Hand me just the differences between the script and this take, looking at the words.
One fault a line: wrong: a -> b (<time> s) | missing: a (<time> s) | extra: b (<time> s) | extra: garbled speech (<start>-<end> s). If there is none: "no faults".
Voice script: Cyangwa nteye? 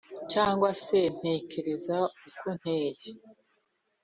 extra: se ntekereza uko (0.8 s)